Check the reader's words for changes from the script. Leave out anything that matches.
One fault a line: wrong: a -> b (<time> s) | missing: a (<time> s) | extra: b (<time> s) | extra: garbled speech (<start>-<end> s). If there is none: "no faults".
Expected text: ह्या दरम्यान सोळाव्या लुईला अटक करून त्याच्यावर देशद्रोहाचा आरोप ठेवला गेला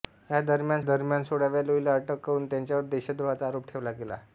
extra: दरम्यान (0.8 s)